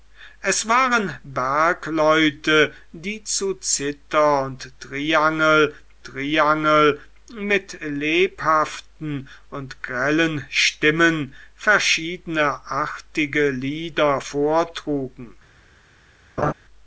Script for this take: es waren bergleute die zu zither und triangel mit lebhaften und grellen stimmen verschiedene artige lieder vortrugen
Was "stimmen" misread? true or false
false